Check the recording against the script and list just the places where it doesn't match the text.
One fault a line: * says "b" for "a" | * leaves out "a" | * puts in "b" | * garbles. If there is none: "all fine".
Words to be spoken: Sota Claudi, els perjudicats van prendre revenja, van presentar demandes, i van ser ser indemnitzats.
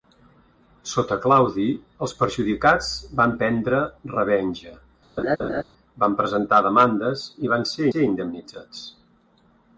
all fine